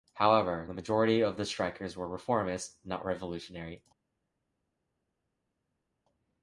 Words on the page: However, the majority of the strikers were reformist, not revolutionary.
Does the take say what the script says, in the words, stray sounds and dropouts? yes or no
yes